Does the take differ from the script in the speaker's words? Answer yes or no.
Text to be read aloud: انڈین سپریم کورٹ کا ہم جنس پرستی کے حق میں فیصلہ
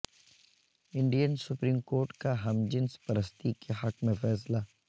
no